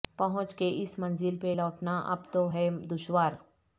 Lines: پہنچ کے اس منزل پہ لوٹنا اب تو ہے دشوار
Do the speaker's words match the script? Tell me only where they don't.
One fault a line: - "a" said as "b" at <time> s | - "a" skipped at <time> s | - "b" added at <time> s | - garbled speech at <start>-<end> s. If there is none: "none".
none